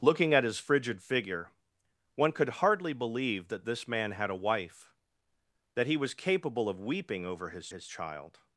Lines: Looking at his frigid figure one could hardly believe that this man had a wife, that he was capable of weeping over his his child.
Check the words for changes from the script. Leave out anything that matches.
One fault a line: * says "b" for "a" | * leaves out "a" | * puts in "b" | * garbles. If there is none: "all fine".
all fine